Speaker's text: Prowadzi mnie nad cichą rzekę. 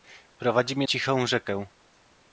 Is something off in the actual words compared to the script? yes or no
yes